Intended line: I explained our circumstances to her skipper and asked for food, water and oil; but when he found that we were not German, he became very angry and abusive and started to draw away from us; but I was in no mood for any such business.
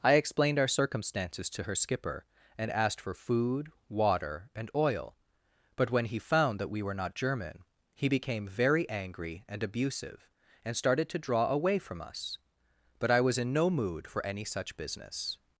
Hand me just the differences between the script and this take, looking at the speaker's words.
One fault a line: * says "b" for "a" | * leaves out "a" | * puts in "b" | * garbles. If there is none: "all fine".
all fine